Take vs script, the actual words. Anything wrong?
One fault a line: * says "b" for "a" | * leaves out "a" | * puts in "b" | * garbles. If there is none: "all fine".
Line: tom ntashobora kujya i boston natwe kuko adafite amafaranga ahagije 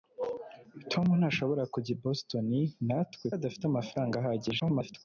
* leaves out "kuko"
* garbles